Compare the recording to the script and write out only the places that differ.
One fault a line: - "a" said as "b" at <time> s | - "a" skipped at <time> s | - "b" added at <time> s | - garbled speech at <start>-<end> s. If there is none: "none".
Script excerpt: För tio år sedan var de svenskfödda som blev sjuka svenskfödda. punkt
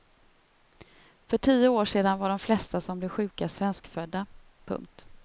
- "svenskfödda" said as "flesta" at 2.4 s